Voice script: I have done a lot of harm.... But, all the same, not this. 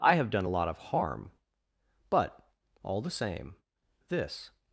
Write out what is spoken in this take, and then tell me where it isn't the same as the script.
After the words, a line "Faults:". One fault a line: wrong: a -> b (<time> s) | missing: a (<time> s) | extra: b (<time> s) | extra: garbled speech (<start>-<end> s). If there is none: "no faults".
I have done a lot of harm.... But, all the same, this.
Faults:
missing: not (3.6 s)